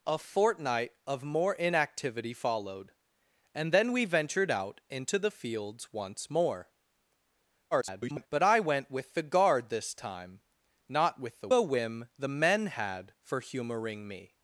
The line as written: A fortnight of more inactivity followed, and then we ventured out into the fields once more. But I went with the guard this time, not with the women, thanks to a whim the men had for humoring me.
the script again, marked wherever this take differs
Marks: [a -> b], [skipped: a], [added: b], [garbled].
A fortnight of more inactivity followed, and then we ventured out into the fields once more. [garbled] But I went with the guard this time, not with the [skipped: women, thanks to] a whim the men had for humoring me.